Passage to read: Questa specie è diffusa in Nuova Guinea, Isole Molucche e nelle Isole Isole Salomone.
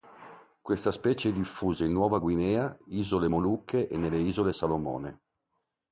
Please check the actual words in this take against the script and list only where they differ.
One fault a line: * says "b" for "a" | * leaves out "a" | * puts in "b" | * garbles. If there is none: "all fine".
* leaves out "Isole"